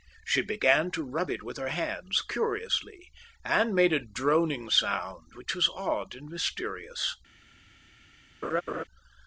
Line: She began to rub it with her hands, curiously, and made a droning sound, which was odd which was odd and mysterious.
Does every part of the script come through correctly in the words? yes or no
no